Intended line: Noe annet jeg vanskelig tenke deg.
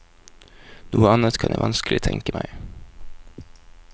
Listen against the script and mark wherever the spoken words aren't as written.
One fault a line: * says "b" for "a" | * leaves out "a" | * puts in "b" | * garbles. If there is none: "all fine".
* puts in "kan"
* says "meg" for "deg"